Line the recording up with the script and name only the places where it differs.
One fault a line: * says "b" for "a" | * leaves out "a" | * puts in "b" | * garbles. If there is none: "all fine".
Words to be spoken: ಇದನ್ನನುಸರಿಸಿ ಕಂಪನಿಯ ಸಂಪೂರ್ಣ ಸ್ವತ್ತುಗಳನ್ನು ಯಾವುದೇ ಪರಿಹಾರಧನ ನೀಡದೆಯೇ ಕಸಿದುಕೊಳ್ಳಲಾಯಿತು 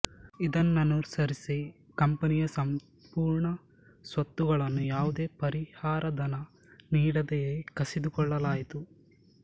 all fine